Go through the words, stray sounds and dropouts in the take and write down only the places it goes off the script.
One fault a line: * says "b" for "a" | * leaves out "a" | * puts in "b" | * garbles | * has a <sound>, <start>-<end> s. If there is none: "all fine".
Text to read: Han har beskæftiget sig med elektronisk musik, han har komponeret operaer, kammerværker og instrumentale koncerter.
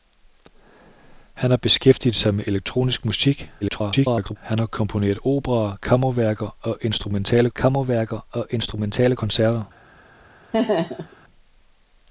* garbles
* puts in "kammerværker og instrumentale"
* has a laugh, 10.5-11.2 s